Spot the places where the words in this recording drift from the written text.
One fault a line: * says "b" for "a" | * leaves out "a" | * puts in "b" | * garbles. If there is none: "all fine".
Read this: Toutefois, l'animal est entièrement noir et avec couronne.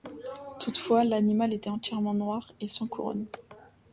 * says "était" for "est"
* says "sans" for "avec"